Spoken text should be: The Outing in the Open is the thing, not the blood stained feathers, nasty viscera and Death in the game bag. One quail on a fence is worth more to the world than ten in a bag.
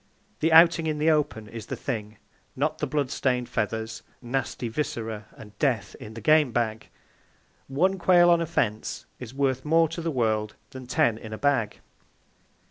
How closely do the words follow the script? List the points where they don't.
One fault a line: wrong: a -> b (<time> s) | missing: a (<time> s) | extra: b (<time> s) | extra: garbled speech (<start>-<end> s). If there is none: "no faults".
no faults